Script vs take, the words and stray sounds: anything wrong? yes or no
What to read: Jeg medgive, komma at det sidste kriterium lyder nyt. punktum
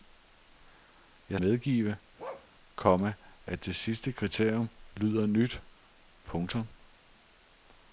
yes